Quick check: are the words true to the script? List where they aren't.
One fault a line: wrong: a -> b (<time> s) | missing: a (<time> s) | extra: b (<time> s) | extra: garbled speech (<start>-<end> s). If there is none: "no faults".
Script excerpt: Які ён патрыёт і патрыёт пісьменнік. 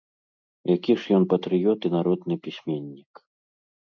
extra: ж (1.0 s)
wrong: патрыёт -> народны (2.0 s)